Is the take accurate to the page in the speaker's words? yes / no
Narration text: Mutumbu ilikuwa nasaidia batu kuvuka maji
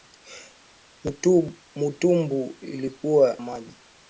no